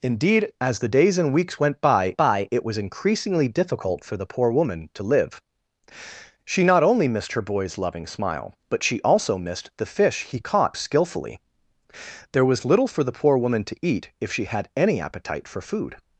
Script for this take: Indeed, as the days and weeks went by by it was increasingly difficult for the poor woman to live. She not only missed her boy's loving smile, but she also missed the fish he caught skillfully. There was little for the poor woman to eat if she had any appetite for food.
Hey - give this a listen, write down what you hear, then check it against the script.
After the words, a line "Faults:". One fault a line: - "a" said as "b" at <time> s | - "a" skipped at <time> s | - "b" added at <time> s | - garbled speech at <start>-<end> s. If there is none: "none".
Indeed, as the days and weeks went by by it was increasingly difficult for the poor woman to live. She not only missed her boy's loving smile, but she also missed the fish he caught skillfully. There was little for the poor woman to eat if she had any appetite for food.
Faults:
none